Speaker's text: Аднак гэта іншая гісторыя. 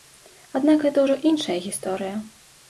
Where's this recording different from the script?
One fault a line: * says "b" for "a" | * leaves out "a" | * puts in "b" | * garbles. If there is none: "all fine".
* puts in "ўжо"